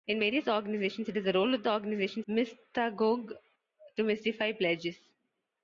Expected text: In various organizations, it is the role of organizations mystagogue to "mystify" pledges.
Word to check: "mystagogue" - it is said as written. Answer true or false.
true